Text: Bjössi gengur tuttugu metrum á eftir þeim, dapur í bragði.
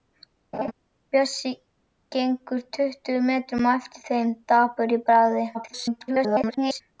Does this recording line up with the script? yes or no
no